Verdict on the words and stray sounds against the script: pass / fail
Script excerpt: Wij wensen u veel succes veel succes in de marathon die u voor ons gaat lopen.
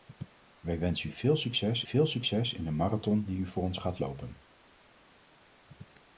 pass